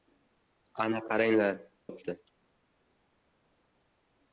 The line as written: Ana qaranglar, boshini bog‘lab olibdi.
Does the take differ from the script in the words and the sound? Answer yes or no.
yes